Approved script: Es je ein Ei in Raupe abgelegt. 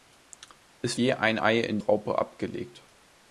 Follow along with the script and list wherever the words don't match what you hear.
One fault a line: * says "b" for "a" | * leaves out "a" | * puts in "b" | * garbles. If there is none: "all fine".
all fine